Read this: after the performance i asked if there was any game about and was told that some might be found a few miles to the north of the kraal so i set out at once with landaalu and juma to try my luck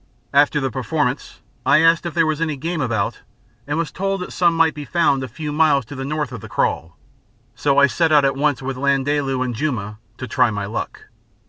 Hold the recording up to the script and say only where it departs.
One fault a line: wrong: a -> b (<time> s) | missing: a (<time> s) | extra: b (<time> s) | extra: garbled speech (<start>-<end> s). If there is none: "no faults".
no faults